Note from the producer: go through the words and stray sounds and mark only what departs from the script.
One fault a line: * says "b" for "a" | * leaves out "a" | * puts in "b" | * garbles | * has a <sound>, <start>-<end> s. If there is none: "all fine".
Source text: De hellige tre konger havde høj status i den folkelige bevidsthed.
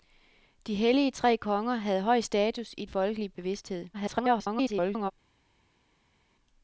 * leaves out "den"
* garbles